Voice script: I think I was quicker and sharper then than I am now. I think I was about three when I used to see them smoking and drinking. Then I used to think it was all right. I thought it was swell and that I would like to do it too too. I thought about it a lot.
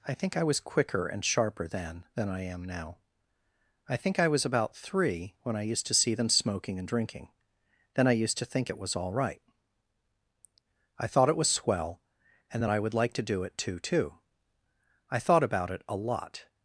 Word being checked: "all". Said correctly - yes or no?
yes